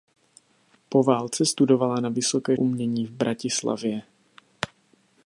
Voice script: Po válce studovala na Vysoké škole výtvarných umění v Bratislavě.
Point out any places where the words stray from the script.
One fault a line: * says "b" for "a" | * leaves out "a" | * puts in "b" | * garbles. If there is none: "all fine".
* leaves out "škole výtvarných"